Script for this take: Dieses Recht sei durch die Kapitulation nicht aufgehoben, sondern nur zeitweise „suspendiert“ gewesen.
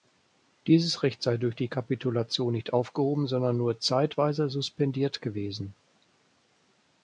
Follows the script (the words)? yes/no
yes